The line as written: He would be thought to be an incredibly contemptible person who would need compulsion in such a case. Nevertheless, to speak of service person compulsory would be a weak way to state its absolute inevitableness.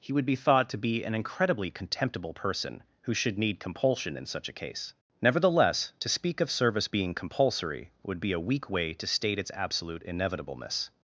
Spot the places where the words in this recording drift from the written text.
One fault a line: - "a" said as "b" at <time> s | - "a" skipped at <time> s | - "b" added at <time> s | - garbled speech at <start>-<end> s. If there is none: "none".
- "would" said as "should" at 3.1 s
- "person" said as "being" at 6.9 s